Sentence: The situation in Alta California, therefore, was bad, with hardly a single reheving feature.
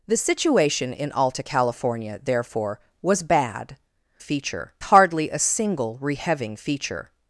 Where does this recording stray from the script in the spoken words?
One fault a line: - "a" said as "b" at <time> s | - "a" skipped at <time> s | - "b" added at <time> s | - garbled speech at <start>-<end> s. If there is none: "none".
- "with" said as "feature" at 4.2 s